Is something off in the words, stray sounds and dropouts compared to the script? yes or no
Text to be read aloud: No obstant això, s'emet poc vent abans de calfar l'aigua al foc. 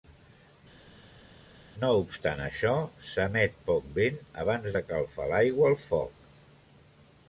no